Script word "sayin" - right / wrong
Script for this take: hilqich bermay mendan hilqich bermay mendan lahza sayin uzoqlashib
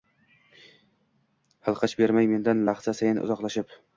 right